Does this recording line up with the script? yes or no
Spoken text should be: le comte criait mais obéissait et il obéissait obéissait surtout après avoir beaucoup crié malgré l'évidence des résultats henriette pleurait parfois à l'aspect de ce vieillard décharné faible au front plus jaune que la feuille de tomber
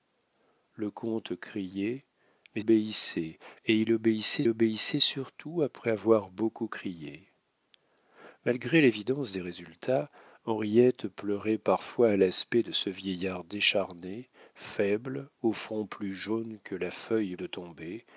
yes